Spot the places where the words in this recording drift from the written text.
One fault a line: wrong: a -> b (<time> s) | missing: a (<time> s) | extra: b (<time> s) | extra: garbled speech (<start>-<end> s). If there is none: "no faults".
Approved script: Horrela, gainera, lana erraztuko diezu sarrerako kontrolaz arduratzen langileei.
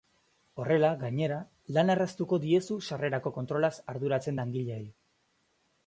no faults